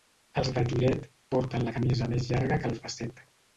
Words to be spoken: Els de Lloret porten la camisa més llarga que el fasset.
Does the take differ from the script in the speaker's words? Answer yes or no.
no